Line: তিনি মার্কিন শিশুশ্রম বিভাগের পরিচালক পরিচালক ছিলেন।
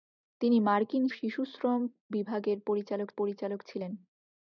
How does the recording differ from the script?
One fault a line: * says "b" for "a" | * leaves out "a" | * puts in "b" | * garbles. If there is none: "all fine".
all fine